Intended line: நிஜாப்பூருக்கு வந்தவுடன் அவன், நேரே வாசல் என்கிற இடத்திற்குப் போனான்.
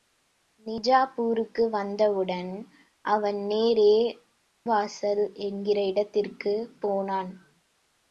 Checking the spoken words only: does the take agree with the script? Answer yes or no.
yes